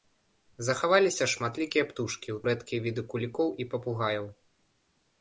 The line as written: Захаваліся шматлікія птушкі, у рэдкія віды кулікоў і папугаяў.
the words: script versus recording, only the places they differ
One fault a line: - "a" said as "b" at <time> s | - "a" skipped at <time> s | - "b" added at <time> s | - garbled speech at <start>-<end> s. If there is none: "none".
none